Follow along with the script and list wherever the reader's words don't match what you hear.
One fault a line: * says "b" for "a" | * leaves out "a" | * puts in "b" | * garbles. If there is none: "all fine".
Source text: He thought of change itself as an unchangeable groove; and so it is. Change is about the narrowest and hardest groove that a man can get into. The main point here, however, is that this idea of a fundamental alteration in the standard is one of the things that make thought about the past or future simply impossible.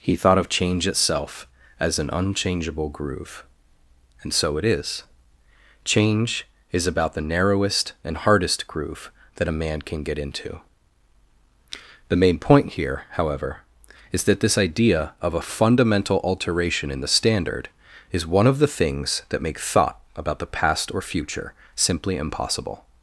all fine